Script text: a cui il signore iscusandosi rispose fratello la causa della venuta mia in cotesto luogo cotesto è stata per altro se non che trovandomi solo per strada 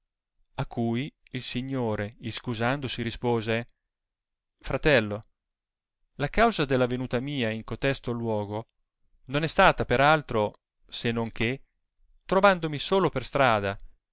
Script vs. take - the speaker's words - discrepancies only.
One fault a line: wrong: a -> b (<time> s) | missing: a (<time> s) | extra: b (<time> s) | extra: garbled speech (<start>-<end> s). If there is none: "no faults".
wrong: cotesto -> non (9.3 s)